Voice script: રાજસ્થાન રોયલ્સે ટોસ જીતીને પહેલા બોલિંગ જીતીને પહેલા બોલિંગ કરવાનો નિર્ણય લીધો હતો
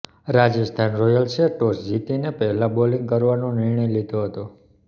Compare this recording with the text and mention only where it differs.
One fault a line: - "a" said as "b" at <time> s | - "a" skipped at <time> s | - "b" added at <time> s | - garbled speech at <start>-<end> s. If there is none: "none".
- "જીતીને પહેલા બોલિંગ" skipped at 3.1 s